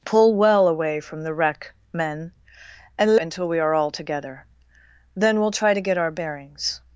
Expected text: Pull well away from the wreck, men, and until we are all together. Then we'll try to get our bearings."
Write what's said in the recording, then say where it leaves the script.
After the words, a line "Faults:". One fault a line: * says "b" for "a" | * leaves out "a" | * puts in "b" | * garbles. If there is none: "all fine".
Pull well away from the wreck, men, and until we are all together. Then we'll try to get our bearings."
Faults:
all fine